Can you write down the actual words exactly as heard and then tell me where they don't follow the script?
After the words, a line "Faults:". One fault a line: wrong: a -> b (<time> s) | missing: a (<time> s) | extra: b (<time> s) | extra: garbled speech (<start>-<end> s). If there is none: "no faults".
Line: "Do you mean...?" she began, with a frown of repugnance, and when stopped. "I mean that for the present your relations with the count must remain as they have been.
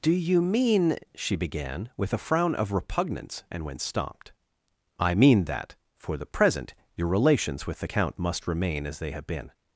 "Do you mean...?" she began, with a frown of repugnance, and when stopped. "I mean that for the present your relations with the count must remain as they have been.
Faults:
no faults